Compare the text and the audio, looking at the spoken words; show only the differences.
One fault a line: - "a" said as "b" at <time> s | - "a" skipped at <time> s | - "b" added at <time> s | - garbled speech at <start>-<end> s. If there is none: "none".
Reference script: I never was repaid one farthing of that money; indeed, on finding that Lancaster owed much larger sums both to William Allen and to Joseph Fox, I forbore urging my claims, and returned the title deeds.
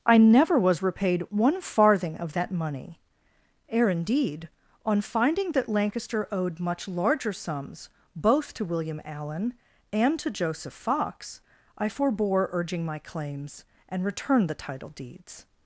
- "ere" added at 3.7 s